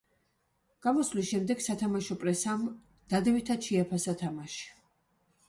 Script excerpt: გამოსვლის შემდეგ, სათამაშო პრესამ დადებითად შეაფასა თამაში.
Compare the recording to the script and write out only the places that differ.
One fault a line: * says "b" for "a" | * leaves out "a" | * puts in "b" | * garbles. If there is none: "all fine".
all fine